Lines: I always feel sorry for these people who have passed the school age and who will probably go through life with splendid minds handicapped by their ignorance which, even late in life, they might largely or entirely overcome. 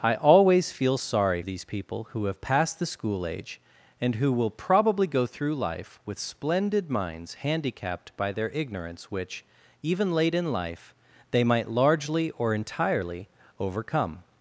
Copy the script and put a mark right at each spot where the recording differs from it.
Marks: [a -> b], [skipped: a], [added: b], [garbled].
I always feel sorry [skipped: for] these people who have passed the school age and who will probably go through life with splendid minds handicapped by their ignorance which, even late in life, they might largely or entirely overcome.